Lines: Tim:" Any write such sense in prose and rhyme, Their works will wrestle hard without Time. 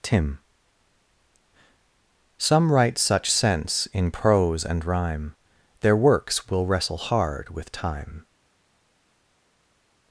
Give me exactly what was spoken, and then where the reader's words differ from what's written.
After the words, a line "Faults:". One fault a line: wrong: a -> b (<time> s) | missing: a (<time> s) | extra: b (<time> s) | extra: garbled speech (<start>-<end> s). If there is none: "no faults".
Tim:" Some write such sense in prose and rhyme, Their works will wrestle hard with Time.
Faults:
wrong: Any -> Some (2.4 s)
wrong: without -> with (7.5 s)